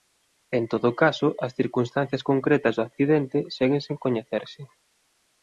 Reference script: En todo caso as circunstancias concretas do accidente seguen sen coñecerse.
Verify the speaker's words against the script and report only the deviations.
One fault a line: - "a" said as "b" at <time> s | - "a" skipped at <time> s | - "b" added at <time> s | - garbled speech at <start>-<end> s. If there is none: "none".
none